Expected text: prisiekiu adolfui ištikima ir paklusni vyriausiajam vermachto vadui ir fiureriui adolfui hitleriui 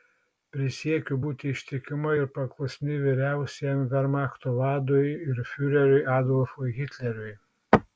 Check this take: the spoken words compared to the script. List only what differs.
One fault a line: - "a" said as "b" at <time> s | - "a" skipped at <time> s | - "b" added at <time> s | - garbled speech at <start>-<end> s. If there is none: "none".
- "adolfui" said as "būti" at 1.3 s